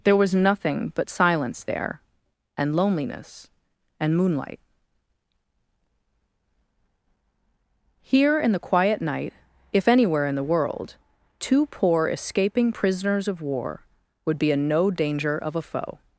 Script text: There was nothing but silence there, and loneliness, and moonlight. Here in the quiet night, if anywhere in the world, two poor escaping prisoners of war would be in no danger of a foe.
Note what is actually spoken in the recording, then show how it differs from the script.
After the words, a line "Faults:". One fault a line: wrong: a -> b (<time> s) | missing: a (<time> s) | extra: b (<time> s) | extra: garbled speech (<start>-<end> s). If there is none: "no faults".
There was nothing but silence there, and loneliness, and moonlight. Here in the quiet night, if anywhere in the world, two poor escaping prisoners of war would be in no danger of a foe.
Faults:
no faults